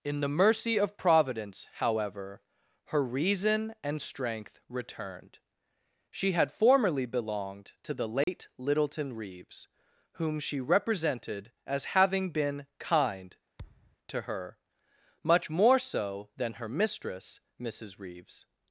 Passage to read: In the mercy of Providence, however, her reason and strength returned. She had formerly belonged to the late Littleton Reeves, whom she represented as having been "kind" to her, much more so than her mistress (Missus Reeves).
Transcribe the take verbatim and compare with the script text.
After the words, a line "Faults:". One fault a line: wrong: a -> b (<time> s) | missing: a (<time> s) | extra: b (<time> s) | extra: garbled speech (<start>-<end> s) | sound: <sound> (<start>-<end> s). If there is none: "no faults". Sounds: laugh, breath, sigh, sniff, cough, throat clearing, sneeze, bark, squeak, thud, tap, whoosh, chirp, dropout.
In the mercy of Providence, however, her reason and strength returned. She had formerly belonged to the late Littleton Reeves, whom she represented as having been "kind" to her, much more so than her mistress (Missus Reeves).
Faults:
sound: dropout (8.2-8.3 s)
sound: thud (13.6-14.0 s)